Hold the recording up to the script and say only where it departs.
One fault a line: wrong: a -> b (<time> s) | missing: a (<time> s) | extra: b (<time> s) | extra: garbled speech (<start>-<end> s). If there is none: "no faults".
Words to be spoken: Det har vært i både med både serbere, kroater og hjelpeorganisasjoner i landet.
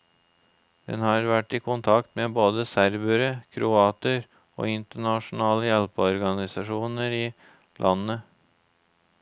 wrong: Det -> Den (0.9 s)
wrong: både -> kontakt (1.7 s)
extra: internasjonale (4.8 s)